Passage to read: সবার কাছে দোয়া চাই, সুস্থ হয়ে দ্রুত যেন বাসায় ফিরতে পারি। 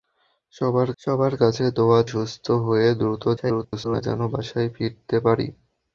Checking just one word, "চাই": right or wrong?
wrong